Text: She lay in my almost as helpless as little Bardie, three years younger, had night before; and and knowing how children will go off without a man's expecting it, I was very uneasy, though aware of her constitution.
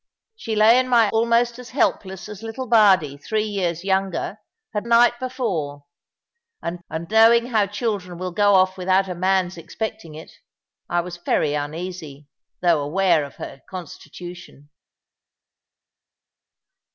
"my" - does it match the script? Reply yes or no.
yes